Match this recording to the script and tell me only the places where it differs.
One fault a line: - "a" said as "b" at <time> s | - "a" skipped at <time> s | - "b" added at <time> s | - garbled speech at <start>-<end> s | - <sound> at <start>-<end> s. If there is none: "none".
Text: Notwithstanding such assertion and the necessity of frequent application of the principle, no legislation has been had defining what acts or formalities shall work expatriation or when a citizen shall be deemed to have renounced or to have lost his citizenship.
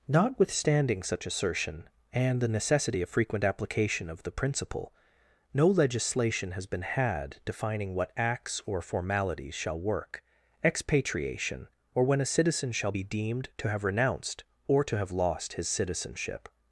none